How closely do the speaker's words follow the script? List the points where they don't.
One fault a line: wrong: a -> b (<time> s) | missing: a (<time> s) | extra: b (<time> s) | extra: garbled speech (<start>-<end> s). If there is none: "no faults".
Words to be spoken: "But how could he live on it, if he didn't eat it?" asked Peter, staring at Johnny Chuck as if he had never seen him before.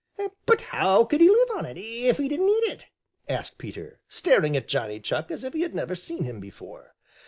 no faults